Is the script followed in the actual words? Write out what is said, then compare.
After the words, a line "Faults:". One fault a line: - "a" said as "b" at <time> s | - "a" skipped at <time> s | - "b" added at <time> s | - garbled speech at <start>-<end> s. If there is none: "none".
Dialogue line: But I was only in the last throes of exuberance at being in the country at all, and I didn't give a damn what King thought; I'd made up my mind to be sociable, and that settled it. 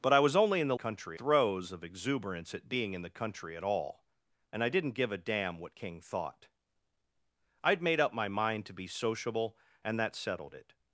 But I was only in the country throes of exuberance at being in the country at all, and I didn't give a damn what King thought; I'd made up my mind to be sociable, and that settled it.
Faults:
- "last" said as "country" at 0.7 s